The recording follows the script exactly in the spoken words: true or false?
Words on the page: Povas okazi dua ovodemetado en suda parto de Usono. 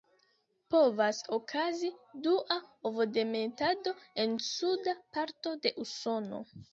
true